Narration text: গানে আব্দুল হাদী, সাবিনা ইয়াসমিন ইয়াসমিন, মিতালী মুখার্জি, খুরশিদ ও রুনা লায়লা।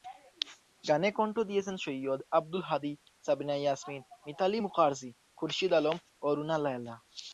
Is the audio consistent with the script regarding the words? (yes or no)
no